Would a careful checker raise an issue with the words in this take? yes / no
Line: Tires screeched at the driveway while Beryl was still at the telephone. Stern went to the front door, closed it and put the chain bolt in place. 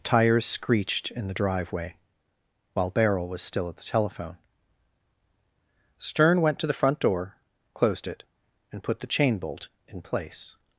yes